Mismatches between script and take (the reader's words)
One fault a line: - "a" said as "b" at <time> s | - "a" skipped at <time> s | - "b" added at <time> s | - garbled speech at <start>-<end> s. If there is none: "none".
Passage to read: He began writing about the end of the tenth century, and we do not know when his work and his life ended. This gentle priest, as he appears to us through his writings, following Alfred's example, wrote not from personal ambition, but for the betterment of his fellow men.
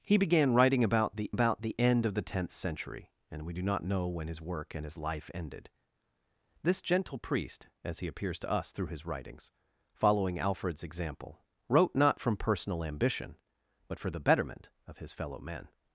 - "about the" added at 1.3 s